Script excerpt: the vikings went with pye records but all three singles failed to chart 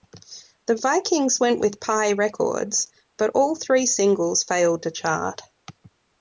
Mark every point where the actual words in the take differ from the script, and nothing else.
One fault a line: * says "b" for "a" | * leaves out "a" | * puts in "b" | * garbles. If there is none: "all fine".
all fine